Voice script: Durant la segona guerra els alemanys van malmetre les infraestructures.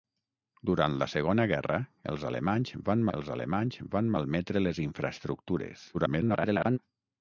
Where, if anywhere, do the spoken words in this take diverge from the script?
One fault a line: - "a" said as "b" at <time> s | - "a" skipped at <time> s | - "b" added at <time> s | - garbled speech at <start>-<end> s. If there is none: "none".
- "els alemanys van" added at 3.2 s
- garbled speech at 5.9-6.8 s